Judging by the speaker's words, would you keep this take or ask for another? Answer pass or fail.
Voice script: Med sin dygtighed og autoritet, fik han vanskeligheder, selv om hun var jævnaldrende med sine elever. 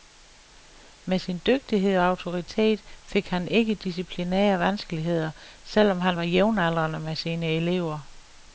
fail